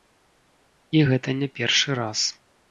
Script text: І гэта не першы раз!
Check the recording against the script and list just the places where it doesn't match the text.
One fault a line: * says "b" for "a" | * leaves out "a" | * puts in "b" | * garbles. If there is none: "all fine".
all fine